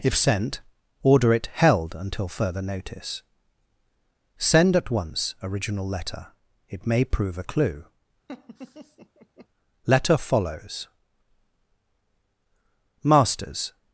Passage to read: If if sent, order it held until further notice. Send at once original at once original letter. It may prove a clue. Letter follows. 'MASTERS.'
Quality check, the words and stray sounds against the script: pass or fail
fail